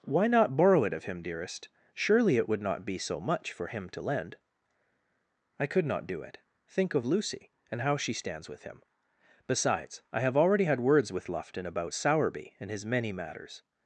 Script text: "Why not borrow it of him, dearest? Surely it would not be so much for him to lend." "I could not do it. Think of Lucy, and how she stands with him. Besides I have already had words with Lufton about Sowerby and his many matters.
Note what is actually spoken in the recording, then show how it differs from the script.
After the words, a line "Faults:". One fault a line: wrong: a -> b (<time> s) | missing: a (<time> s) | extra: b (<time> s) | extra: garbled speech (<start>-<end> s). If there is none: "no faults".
"Why not borrow it of him, dearest? Surely it would not be so much for him to lend." "I could not do it. Think of Lucy, and how she stands with him. Besides I have already had words with Lufton about Sowerby and his many matters.
Faults:
no faults